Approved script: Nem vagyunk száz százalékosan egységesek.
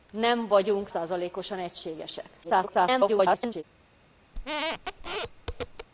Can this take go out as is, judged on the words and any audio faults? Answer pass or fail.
fail